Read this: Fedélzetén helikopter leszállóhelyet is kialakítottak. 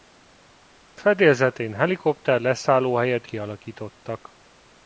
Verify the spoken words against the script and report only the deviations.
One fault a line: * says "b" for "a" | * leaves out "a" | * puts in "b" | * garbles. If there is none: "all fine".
* leaves out "is"